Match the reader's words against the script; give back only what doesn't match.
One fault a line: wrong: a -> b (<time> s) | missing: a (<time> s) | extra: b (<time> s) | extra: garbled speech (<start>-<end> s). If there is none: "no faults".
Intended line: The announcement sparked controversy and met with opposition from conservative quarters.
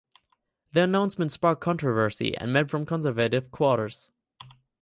missing: with opposition (2.7 s)